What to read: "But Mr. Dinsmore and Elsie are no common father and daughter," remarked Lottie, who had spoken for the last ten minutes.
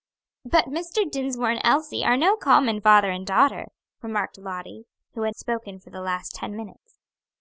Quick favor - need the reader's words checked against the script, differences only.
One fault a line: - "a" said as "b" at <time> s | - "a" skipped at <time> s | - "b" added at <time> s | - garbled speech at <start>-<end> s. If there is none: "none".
none